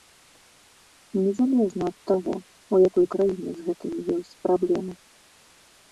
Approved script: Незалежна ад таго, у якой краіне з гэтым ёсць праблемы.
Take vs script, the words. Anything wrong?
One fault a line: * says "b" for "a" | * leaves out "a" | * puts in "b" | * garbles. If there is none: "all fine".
all fine